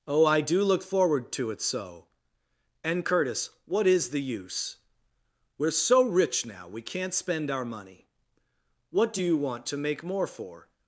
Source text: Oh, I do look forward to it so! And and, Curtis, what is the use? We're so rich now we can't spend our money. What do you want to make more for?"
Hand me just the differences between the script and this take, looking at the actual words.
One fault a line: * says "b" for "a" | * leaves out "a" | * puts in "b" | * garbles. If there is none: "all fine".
* leaves out "and"